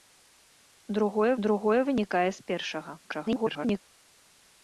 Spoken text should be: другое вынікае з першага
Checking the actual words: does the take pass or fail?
fail